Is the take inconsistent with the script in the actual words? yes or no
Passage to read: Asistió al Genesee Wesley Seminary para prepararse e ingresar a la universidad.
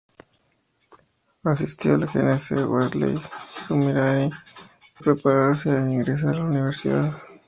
yes